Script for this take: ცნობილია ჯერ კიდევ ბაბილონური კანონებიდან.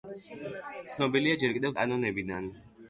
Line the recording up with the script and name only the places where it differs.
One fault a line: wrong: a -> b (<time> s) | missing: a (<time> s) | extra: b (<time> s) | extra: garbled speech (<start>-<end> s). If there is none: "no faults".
missing: ბაბილონური (1.7 s)